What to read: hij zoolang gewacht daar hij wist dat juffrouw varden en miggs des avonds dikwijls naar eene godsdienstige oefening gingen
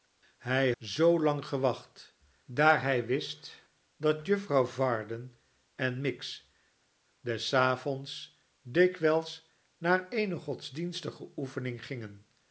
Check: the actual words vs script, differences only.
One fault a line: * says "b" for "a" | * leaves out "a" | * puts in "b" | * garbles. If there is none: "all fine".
all fine